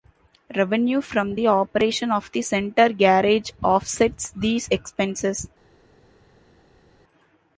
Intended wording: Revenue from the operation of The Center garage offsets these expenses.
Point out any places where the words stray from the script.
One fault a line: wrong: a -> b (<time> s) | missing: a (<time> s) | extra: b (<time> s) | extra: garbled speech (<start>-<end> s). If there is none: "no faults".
no faults